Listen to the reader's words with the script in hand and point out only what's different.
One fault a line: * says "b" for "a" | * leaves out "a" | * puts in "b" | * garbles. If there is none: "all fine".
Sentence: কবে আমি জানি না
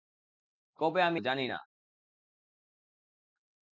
all fine